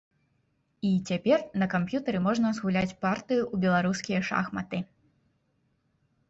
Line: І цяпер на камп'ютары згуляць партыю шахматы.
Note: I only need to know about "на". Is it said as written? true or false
true